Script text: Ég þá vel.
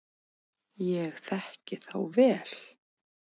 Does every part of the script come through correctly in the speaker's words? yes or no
no